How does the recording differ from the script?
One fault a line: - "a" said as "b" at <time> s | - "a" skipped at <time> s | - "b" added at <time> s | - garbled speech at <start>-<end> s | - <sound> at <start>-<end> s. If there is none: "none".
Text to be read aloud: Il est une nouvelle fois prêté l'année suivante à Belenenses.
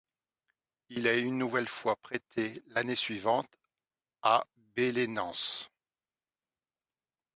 none